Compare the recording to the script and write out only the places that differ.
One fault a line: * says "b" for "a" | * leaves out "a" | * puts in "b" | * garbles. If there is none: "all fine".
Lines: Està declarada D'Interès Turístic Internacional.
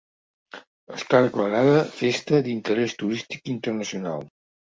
* puts in "Festa"